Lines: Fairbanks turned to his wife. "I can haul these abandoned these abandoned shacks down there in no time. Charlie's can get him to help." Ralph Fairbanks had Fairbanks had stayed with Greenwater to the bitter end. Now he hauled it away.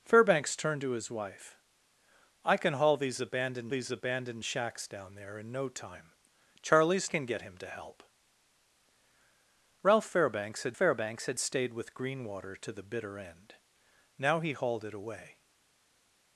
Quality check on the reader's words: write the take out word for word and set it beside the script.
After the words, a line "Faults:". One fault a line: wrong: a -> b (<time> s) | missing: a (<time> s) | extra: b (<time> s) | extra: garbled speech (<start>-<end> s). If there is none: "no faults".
Fairbanks turned to his wife. "I can haul these abandoned these abandoned shacks down there in no time. Charlie's can get him to help." Ralph Fairbanks had Fairbanks had stayed with Greenwater to the bitter end. Now he hauled it away.
Faults:
no faults